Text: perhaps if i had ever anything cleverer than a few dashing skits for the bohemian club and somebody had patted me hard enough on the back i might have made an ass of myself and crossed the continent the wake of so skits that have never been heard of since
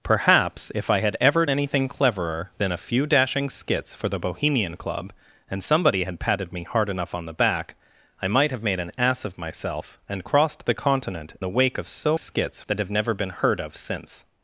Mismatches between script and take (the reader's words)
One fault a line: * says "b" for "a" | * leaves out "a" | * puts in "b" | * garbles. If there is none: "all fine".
all fine